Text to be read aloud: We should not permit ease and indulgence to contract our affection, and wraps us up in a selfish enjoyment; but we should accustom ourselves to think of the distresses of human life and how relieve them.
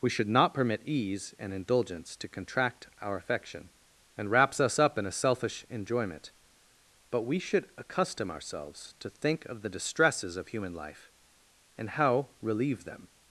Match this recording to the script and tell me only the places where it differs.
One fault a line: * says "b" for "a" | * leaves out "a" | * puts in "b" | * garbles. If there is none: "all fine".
all fine